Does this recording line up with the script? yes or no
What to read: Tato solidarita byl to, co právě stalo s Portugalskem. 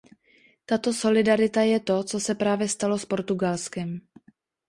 no